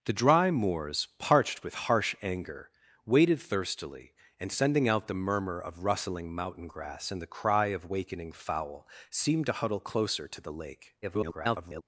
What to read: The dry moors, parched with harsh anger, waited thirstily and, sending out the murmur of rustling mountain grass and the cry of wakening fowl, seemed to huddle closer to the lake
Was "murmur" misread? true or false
false